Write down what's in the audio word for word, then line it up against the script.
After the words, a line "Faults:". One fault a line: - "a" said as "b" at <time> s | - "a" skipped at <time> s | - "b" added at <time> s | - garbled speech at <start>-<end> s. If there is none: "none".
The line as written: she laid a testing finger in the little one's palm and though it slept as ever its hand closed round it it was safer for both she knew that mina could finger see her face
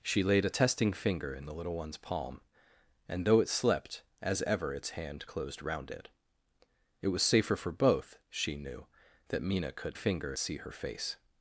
she laid a testing finger in the little one's palm and though it slept as ever its hand closed round it it was safer for both she knew that mina could finger see her face
Faults:
none